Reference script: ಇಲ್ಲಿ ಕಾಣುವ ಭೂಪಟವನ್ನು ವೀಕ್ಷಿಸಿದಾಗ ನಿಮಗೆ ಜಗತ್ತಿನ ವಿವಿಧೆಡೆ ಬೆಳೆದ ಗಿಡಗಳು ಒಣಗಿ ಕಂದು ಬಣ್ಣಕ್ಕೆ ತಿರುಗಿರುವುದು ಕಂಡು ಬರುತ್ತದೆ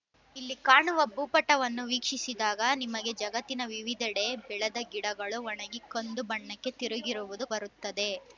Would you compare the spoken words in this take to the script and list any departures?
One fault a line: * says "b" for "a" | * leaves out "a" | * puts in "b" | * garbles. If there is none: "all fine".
* leaves out "ಕಂಡು"